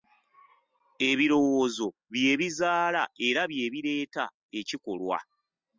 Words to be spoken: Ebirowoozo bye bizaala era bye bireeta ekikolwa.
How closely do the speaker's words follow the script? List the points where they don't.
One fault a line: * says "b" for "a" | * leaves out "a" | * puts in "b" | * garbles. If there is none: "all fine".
all fine